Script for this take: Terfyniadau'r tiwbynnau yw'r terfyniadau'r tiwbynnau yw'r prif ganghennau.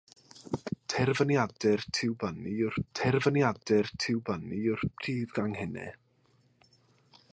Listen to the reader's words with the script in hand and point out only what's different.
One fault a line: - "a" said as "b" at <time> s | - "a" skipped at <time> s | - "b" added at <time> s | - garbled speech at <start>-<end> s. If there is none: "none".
none